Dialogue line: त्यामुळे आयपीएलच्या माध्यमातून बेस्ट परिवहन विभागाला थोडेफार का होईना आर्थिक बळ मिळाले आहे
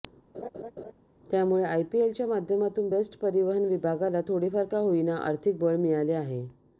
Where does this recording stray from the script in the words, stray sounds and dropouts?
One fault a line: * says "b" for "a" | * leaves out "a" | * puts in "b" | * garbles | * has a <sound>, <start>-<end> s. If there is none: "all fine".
* has a laugh, 0.3-0.9 s